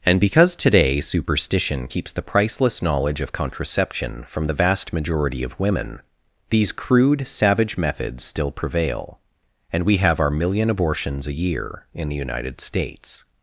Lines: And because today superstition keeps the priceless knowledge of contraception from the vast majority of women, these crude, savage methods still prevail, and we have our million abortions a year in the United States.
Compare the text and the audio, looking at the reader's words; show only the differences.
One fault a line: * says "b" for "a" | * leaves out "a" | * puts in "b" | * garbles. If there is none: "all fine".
all fine